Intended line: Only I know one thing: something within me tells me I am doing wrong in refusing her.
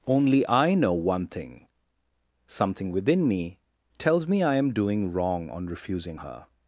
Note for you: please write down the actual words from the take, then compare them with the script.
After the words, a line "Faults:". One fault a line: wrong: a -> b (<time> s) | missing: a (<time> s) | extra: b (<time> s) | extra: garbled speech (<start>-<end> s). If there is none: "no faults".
Only I know one thing: something within me tells me I am doing wrong on refusing her.
Faults:
wrong: in -> on (5.5 s)